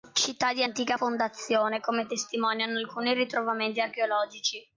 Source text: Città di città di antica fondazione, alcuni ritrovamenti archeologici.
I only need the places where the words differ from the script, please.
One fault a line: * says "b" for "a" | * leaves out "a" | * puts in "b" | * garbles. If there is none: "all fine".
* says "antica fondazione come testimoniano" for "città di antica fondazione"